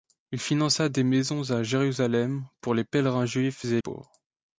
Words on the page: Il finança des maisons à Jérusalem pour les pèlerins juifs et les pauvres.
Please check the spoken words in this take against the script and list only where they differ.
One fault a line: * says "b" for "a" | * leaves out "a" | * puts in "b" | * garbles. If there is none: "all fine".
* leaves out "les"